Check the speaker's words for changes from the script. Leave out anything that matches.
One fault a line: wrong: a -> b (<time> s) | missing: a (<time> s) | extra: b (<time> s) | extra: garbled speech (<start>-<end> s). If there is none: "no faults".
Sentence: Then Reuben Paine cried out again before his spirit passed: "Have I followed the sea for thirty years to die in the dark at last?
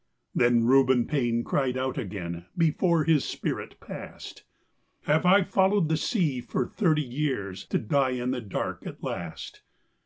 no faults